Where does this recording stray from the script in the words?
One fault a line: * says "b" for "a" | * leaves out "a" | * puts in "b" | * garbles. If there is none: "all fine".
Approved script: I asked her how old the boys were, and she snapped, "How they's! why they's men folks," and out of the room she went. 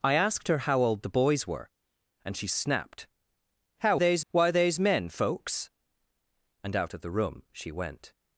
all fine